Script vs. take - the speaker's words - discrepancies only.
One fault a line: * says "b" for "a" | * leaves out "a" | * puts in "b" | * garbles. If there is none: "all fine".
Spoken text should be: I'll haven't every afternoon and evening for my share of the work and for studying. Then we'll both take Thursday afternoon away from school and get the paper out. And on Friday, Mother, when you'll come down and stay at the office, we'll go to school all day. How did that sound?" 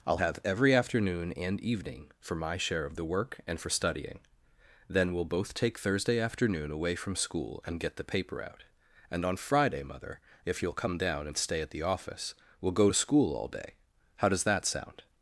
* says "have" for "haven't"
* says "if" for "when"
* says "does" for "did"